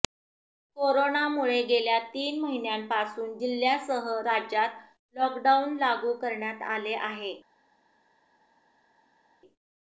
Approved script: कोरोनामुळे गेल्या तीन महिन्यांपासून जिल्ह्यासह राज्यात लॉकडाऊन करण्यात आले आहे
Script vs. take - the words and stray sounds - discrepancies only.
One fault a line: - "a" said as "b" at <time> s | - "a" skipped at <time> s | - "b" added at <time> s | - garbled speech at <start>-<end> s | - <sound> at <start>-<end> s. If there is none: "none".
- "लागू" added at 5.8 s